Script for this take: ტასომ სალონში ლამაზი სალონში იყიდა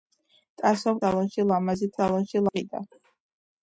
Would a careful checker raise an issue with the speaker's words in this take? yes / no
no